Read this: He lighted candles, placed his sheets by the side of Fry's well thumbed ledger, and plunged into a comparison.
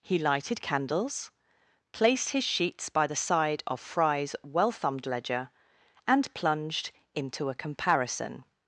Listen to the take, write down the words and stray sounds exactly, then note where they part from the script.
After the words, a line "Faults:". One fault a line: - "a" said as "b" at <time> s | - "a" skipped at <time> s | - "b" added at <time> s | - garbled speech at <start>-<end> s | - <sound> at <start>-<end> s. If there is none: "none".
He lighted candles, placed his sheets by the side of Fry's well thumbed ledger, and plunged into a comparison.
Faults:
none